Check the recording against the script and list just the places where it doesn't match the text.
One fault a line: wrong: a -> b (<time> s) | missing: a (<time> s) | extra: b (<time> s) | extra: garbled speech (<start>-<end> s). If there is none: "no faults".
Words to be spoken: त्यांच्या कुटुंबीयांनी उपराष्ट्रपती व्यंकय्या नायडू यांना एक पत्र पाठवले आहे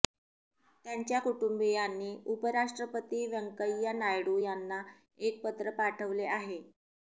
no faults